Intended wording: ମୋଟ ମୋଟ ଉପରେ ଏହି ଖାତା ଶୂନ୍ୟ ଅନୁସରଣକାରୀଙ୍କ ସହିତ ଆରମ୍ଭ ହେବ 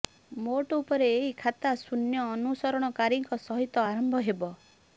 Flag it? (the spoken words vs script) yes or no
yes